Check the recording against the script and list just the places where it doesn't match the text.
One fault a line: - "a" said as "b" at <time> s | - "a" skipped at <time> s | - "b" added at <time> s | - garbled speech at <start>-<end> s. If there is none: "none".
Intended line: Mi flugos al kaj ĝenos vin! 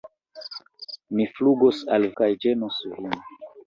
none